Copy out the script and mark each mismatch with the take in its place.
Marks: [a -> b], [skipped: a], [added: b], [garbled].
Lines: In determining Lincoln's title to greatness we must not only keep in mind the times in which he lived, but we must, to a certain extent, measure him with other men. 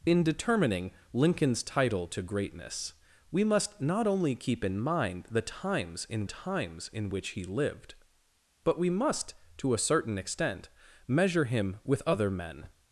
In determining Lincoln's title to greatness we must not only keep in mind the times in [added: times in] which he lived, but we must, to a certain extent, measure him with other men.